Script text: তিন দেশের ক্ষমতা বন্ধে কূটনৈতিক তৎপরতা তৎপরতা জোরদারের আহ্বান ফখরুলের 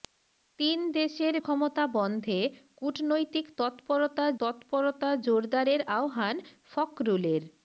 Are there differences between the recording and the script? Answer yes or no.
no